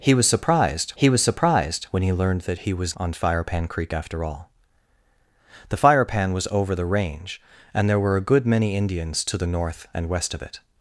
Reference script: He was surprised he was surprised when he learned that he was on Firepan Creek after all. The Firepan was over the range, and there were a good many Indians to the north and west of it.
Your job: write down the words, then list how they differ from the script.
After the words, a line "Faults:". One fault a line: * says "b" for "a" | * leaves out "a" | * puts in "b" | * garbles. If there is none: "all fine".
He was surprised he was surprised when he learned that he was on Firepan Creek after all. The Firepan was over the range, and there were a good many Indians to the north and west of it.
Faults:
all fine